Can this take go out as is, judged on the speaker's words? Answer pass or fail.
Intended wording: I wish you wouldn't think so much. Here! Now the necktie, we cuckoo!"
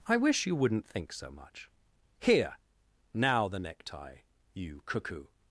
fail